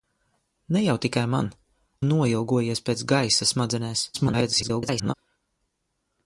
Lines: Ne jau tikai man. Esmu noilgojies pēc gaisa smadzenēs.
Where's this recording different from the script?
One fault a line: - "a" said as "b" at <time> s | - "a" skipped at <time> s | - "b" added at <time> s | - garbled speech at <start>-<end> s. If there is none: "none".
- "Esmu" skipped at 1.5 s
- garbled speech at 4.1-5.1 s